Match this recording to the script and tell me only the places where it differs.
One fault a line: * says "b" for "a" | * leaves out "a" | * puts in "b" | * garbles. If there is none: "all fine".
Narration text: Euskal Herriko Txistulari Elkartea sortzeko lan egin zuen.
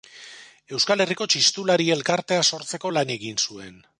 all fine